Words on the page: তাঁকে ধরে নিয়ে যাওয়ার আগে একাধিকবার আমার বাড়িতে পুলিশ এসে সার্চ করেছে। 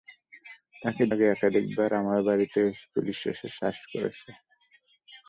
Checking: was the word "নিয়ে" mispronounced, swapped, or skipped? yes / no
yes